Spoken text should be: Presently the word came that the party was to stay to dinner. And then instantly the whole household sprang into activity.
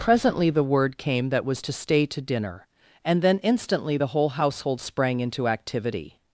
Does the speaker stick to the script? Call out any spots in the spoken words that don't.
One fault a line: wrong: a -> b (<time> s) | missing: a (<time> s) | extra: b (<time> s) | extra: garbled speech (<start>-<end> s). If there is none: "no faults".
missing: the party (1.4 s)